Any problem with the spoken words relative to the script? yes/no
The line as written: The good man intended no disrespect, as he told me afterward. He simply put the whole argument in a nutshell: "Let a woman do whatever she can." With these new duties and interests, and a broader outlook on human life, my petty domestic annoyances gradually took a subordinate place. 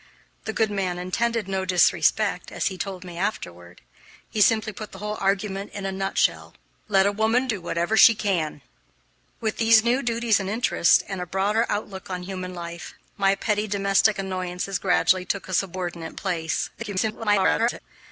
yes